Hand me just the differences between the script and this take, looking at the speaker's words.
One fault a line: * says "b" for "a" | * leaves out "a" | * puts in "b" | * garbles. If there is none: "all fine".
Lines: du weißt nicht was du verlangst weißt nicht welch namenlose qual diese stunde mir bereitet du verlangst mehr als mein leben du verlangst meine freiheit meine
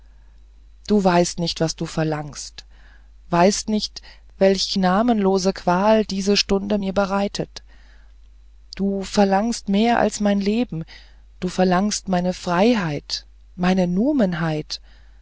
all fine